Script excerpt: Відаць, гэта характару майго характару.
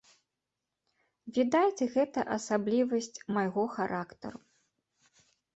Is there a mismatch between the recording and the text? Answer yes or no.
yes